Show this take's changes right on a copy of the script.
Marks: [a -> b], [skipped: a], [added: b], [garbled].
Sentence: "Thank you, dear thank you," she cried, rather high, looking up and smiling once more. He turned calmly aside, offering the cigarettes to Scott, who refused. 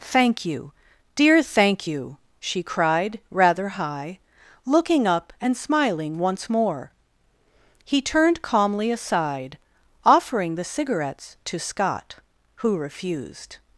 "Thank you, dear thank you," she cried, rather high, looking up and smiling once more. He turned calmly aside, offering the cigarettes to Scott, who refused.